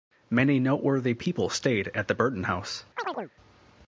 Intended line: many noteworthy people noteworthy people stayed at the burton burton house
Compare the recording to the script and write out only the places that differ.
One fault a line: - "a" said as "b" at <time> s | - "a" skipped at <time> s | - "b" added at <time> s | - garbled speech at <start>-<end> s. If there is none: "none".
- "noteworthy people" skipped at 1.5 s
- "burton" skipped at 2.5 s